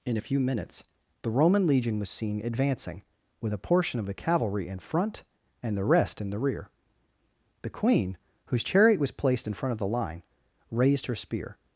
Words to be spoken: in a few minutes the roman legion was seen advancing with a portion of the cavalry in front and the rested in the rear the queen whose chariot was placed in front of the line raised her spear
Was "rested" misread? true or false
true